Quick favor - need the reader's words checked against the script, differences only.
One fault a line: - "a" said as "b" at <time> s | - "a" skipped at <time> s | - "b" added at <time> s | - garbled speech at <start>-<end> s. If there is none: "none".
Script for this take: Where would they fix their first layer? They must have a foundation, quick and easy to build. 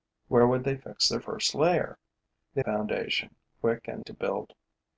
- "must have a" skipped at 2.6 s
- "easy" skipped at 4.0 s